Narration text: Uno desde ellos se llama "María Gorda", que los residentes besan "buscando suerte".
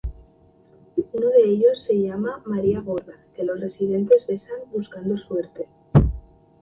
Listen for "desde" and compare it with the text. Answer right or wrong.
wrong